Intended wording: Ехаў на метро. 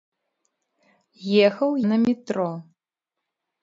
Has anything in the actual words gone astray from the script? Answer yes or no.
no